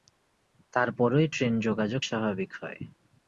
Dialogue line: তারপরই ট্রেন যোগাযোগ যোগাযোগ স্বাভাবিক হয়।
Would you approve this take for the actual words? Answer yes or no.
no